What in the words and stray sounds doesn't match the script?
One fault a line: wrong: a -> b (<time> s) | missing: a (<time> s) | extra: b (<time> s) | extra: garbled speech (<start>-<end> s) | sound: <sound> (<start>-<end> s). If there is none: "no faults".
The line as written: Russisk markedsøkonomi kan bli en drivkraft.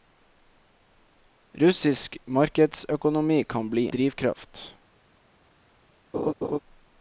missing: en (3.9 s)
sound: laugh (6.1-6.6 s)